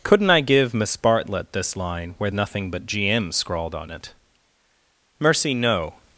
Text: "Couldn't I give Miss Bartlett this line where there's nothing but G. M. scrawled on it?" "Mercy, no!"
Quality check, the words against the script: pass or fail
fail